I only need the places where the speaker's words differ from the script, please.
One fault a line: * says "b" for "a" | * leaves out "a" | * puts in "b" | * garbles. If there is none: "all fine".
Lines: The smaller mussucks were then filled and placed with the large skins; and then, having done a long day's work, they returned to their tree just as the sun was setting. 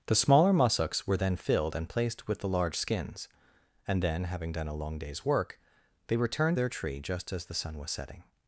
* leaves out "to"